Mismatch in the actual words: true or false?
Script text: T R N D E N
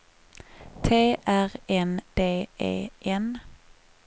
false